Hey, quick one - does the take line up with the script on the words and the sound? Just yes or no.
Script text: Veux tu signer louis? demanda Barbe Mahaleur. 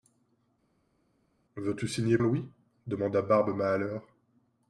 yes